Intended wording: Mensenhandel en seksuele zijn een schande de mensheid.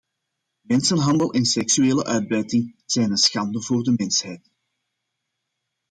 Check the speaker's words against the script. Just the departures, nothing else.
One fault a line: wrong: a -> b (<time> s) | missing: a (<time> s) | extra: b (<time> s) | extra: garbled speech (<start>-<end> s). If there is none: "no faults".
extra: uitbuiting (2.0 s)
extra: voor (3.6 s)